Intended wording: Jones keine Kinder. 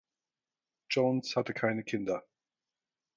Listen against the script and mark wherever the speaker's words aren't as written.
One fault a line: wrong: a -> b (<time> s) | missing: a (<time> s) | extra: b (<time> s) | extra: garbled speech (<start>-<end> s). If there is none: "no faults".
extra: hatte (1.3 s)